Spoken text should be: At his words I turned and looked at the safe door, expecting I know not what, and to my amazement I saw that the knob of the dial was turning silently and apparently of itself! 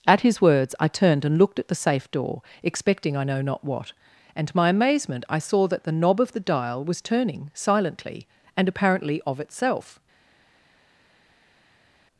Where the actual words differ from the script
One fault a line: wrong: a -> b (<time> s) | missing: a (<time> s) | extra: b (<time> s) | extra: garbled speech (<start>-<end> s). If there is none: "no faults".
no faults